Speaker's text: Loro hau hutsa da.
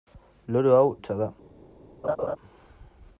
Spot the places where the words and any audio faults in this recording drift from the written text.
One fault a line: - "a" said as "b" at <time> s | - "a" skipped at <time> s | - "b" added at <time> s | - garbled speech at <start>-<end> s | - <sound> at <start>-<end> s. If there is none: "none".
- laugh at 2.0-2.4 s